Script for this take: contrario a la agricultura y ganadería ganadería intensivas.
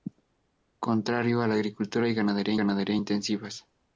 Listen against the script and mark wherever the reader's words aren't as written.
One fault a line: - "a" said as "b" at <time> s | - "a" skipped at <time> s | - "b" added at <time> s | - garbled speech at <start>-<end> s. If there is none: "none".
none